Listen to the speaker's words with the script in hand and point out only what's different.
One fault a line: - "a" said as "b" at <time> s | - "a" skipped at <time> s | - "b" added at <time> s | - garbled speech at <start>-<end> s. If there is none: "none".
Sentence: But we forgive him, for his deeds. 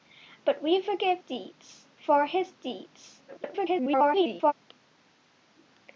- "him" said as "deeds" at 1.2 s
- garbled speech at 3.3-4.5 s